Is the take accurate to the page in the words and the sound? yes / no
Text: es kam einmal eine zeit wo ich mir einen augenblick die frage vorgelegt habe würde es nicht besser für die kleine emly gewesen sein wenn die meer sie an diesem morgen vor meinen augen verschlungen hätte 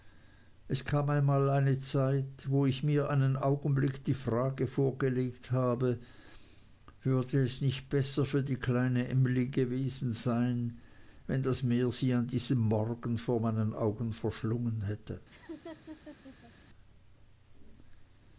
no